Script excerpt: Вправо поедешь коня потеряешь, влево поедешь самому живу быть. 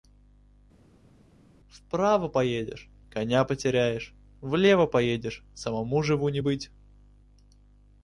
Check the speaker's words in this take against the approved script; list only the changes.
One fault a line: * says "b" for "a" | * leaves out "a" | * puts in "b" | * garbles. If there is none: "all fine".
* puts in "не"